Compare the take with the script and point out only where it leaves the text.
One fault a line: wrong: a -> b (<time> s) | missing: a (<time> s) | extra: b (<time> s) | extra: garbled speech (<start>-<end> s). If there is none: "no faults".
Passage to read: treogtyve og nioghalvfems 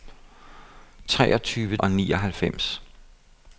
no faults